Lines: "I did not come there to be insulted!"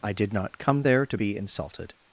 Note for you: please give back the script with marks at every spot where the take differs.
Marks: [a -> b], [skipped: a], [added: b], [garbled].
"I did not come there to be insulted!"